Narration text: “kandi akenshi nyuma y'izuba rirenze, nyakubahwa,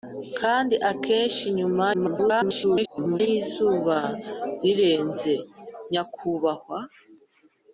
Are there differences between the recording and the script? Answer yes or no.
yes